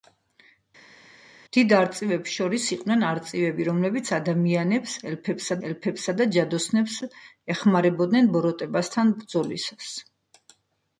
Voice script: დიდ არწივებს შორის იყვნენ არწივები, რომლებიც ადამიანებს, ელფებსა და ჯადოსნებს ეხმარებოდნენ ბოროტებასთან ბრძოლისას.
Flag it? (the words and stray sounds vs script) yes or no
yes